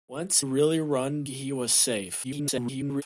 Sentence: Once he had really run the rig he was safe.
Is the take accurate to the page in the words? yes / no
no